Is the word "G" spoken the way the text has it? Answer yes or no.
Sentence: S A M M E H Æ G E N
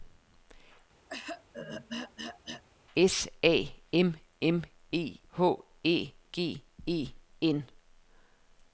yes